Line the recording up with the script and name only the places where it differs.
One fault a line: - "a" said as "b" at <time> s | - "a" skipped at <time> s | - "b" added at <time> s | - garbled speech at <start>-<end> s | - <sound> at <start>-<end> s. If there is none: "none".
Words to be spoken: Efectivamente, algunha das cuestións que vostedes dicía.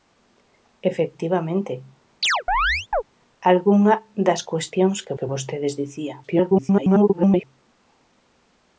- chirp at 2.2-3.0 s
- "que" added at 5.2 s
- garbled speech at 6.2-7.4 s